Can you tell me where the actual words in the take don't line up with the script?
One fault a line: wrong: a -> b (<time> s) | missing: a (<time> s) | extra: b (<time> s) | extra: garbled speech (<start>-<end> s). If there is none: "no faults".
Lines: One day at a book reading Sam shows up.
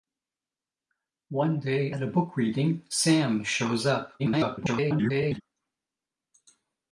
extra: garbled speech (4.2-5.4 s)